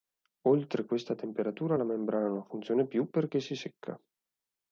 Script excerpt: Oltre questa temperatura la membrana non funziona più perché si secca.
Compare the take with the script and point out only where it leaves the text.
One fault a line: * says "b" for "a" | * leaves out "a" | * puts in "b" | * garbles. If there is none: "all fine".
all fine